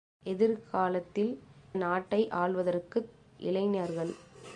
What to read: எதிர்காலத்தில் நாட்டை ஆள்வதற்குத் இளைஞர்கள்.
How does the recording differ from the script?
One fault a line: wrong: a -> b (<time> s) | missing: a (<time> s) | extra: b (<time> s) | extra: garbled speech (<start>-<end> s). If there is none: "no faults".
no faults